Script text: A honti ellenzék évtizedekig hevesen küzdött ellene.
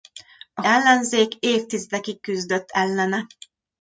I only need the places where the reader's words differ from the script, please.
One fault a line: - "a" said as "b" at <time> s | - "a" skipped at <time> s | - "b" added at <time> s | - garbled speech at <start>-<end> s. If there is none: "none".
- "honti" skipped at 0.6 s
- "hevesen" skipped at 2.2 s